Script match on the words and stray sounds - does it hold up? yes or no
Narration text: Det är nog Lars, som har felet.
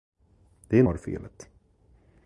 no